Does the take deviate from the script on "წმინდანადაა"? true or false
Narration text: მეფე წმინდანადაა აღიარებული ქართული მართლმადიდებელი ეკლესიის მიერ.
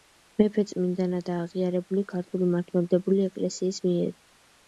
false